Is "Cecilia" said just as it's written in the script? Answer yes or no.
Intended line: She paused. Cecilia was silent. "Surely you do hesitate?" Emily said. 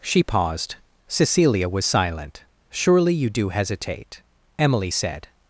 yes